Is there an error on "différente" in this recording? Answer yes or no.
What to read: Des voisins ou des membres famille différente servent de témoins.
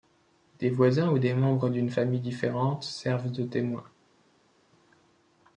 no